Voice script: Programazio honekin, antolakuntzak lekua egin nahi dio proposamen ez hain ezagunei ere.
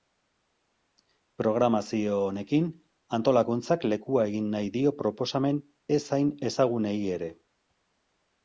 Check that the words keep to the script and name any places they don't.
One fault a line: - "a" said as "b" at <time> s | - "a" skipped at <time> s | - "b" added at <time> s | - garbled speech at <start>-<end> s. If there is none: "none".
none